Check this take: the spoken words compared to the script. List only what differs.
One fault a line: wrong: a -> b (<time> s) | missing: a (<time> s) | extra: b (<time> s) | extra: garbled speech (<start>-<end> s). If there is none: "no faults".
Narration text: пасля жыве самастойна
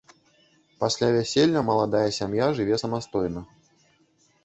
extra: вяселля маладая сям'я (1.2 s)